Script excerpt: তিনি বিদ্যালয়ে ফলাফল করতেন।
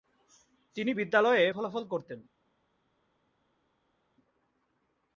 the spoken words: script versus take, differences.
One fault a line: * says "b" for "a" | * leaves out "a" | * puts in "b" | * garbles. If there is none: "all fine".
all fine